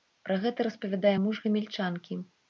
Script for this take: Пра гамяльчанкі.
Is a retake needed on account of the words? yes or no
yes